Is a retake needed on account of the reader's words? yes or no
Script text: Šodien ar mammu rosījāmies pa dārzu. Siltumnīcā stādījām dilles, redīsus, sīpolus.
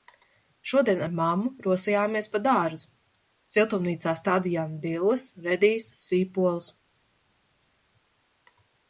no